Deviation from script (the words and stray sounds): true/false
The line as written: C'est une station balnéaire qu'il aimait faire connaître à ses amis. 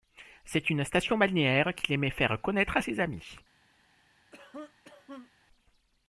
true